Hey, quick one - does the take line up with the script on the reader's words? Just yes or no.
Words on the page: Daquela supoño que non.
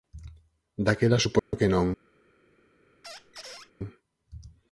yes